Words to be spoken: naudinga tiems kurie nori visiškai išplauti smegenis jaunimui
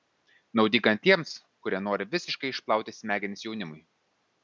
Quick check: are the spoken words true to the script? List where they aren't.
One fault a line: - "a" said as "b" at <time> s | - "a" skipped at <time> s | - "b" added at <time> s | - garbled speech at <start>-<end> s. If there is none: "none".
none